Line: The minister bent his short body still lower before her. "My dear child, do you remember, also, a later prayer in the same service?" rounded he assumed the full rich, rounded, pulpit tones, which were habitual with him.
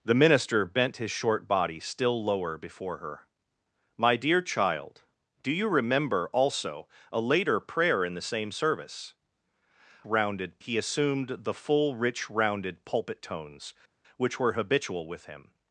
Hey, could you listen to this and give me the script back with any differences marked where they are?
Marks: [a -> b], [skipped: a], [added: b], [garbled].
The minister bent his short body still lower before her. "My dear child, do you remember, also, a later prayer in the same service?" rounded he assumed the full rich, rounded, pulpit tones, which were habitual with him.